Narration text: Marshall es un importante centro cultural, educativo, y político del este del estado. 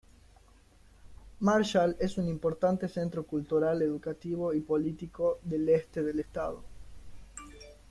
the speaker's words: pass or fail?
pass